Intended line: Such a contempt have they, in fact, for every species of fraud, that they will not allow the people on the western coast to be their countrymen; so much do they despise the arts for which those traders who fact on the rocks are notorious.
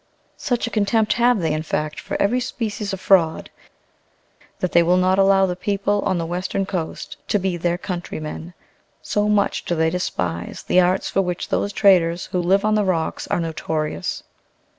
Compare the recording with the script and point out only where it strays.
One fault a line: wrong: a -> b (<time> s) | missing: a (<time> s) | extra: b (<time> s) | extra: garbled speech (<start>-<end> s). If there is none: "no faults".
wrong: fact -> live (12.4 s)